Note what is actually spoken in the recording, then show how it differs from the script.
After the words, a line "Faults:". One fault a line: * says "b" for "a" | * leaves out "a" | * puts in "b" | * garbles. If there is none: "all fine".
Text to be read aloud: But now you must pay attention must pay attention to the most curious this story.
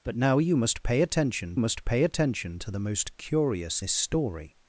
But now you must pay attention must pay attention to the most curious this story.
Faults:
all fine